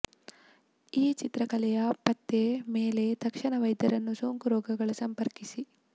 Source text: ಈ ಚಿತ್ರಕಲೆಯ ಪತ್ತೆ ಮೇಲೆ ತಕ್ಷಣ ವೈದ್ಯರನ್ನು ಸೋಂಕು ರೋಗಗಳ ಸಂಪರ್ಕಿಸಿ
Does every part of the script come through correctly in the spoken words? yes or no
yes